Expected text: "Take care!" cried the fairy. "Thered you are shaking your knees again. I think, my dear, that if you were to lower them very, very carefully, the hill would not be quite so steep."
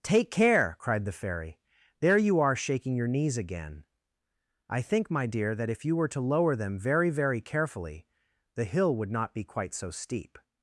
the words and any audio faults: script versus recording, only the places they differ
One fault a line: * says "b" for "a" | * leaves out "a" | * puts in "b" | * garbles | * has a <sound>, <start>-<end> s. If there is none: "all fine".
* says "There" for "Thered"